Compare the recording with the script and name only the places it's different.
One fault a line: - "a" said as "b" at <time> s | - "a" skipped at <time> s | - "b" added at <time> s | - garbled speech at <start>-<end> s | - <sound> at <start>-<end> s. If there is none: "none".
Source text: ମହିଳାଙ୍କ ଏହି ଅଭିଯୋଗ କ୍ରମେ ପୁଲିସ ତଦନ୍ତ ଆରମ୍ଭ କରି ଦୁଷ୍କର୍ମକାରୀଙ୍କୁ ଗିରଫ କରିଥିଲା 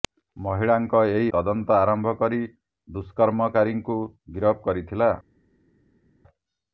- "ଅଭିଯୋଗ କ୍ରମେ ପୁଲିସ" skipped at 1.3 s